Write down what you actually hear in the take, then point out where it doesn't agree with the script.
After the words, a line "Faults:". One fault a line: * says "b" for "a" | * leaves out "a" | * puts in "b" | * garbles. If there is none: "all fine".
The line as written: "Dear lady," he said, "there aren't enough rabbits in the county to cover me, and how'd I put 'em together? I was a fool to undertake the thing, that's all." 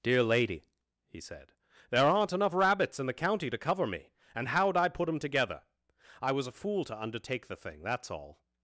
"Dear lady," he said, "there aren't enough rabbits in the county to cover me, and how'd I put 'em together? I was a fool to undertake the thing, that's all."
Faults:
all fine